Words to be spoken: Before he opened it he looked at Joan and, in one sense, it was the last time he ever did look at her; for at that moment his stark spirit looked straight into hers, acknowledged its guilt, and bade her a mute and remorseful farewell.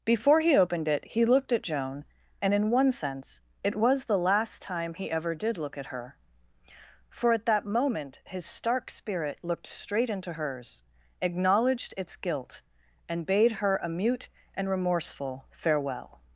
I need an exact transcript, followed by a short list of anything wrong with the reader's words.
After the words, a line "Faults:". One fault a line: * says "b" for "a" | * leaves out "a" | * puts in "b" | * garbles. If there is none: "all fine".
Before he opened it he looked at Joan and, in one sense, it was the last time he ever did look at her; for at that moment his stark spirit looked straight into hers, acknowledged its guilt, and bade her a mute and remorseful farewell.
Faults:
all fine